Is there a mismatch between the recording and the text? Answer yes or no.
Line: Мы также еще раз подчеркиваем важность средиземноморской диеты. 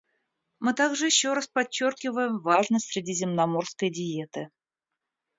no